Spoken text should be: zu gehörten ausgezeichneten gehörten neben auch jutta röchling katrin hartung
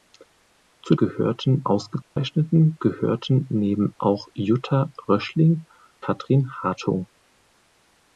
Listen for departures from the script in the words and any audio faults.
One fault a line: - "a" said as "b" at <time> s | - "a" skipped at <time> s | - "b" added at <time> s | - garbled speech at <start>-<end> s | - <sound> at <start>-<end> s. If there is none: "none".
- dropout at 2.0-2.2 s